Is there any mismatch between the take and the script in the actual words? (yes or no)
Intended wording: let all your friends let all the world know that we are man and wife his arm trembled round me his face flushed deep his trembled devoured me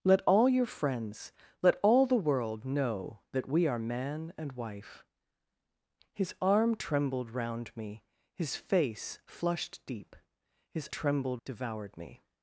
no